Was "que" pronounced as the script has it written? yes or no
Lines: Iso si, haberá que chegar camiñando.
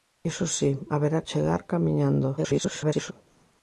no